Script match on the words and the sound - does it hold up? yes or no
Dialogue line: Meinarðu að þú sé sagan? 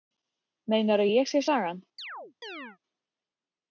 no